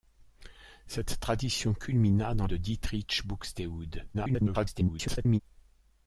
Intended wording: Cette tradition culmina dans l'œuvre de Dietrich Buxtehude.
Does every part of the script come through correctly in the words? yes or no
no